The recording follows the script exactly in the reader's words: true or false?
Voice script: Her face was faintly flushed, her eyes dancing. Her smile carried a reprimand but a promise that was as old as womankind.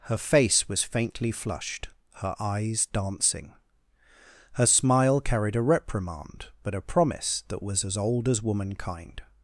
true